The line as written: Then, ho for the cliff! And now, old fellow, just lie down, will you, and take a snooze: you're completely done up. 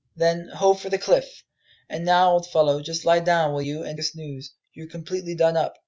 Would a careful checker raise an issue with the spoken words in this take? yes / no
yes